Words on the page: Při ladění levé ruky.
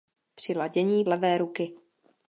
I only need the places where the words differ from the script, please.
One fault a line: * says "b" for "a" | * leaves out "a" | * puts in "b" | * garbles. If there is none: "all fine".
all fine